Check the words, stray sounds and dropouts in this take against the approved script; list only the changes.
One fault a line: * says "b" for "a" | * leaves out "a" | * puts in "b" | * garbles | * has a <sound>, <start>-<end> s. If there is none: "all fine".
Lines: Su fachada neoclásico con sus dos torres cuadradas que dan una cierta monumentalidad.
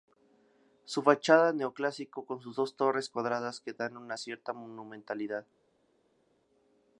all fine